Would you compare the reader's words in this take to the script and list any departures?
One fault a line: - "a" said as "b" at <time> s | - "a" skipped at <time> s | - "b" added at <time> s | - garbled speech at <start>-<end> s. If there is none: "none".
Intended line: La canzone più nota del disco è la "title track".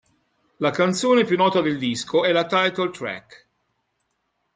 none